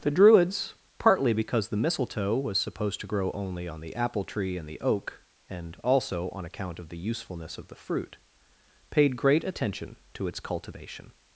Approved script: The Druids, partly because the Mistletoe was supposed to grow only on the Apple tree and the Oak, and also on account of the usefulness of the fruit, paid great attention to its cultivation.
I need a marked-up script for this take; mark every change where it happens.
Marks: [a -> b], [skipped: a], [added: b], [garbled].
The Druids, partly because the Mistletoe was supposed to grow only on the Apple tree and the Oak, and also on account of the usefulness of the fruit, paid great attention to its cultivation.